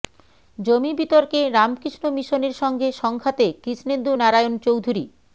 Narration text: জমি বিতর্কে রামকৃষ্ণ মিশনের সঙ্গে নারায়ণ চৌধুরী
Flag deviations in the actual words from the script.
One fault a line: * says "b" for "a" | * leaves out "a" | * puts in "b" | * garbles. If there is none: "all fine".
* puts in "সংঘাতে কৃষ্ণেন্দু"